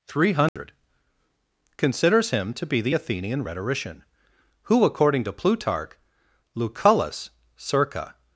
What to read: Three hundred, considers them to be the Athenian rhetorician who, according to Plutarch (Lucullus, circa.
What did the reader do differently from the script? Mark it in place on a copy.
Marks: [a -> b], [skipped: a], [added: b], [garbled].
Three hundred, considers [them -> him] to be the Athenian rhetorician who, according to Plutarch (Lucullus, circa.